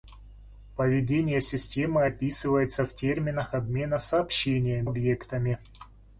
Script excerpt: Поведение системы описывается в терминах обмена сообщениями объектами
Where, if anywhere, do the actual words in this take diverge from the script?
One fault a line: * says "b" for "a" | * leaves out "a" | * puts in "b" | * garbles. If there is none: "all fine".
all fine